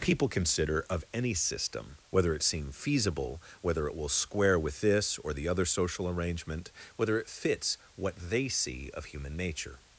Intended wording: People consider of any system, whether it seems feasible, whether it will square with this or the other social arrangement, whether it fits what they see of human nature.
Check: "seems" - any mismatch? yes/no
yes